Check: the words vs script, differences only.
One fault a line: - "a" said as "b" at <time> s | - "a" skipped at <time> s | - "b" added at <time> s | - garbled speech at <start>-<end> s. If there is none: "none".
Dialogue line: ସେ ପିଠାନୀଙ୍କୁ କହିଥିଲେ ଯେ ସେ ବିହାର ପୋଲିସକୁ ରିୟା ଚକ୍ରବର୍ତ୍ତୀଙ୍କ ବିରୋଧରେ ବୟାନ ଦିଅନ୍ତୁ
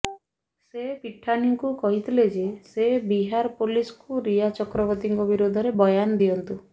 none